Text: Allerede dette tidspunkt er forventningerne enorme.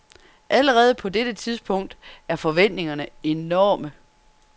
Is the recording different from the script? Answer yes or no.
yes